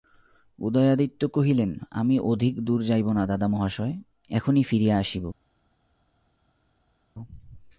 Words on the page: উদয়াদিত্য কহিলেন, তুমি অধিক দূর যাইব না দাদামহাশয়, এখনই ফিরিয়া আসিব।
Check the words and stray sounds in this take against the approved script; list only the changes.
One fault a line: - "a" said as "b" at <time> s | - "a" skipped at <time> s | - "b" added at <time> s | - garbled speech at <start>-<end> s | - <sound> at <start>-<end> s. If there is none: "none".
- "তুমি" said as "আমি" at 1.9 s